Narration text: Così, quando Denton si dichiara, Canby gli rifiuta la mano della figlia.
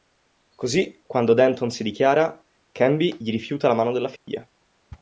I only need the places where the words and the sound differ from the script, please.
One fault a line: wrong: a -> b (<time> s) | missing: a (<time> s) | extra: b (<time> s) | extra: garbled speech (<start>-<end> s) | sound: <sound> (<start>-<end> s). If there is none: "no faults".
sound: dropout (4.2-4.3 s)